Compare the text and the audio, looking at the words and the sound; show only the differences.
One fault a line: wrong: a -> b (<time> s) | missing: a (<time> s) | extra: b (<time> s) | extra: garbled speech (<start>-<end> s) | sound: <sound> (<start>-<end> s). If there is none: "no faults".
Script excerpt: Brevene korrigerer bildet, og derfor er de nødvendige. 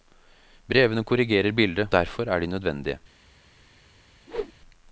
missing: og (1.9 s)
sound: whoosh (4.3-4.5 s)